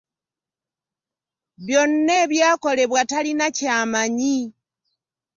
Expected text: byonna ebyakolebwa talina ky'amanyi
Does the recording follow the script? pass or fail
pass